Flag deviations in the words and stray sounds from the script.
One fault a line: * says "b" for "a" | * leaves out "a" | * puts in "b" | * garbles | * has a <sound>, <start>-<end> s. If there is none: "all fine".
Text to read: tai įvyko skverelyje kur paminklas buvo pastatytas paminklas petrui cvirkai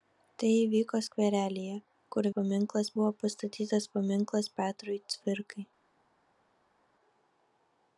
all fine